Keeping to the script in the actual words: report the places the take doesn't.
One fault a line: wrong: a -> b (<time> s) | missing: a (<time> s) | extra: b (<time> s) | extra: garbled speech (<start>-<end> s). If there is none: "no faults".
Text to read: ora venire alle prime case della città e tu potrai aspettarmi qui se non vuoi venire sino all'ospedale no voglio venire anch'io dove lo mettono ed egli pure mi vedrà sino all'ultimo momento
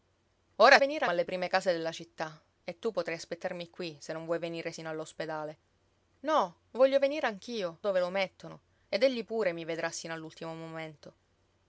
no faults